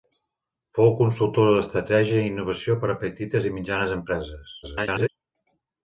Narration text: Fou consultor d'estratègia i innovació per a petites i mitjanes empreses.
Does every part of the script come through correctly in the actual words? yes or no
no